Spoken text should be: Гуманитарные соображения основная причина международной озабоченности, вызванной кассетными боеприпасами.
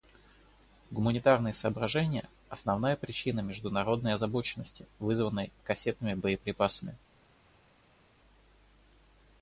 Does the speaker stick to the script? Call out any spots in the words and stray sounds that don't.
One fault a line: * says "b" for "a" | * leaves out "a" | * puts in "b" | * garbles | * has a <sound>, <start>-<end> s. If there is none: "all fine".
all fine